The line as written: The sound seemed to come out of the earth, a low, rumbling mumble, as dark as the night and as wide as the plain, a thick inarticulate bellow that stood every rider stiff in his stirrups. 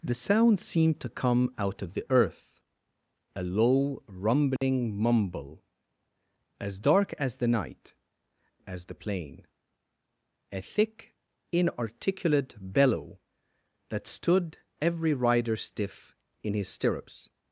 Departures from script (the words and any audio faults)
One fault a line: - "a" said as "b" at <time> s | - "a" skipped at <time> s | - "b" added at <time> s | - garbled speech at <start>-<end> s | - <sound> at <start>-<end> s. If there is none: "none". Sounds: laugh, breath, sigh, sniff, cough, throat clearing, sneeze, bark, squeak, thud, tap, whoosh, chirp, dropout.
- dropout at 4.6-4.6 s
- "and as wide" skipped at 7.9 s